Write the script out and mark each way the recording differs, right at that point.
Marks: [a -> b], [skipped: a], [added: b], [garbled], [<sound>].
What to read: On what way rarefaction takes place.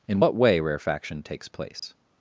[On -> In] what way rarefaction takes place. [dropout]